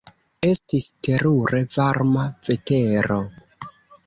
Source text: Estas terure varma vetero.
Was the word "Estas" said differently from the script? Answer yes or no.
yes